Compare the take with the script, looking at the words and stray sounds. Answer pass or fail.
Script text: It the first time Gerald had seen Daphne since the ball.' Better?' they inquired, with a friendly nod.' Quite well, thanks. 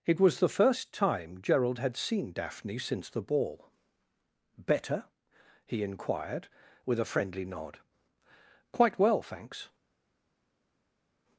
fail